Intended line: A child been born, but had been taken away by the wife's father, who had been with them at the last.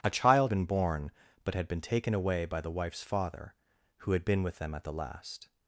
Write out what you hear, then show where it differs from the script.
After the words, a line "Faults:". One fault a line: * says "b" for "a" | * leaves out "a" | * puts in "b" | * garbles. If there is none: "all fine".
A child been born, but had been taken away by the wife's father, who had been with them at the last.
Faults:
all fine